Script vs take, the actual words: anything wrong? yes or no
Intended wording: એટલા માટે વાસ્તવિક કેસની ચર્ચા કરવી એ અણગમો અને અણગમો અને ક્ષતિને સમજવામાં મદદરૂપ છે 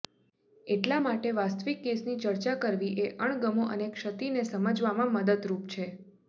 yes